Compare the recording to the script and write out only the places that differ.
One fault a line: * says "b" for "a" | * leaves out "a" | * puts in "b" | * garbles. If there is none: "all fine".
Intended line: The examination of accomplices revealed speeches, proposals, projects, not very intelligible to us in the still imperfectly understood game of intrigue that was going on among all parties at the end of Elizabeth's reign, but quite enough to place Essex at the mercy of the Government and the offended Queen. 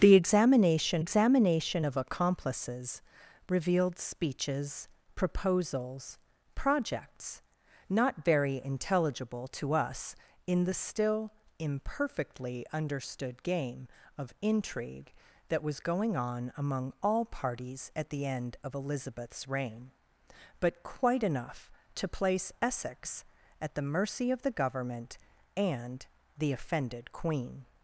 * puts in "examination"